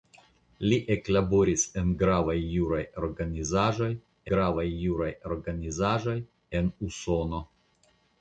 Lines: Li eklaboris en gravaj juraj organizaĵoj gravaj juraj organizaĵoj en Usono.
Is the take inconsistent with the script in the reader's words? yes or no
no